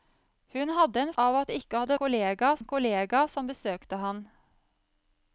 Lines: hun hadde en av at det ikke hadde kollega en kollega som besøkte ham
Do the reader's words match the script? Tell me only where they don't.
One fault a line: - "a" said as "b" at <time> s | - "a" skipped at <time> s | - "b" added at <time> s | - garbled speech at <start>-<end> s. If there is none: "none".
none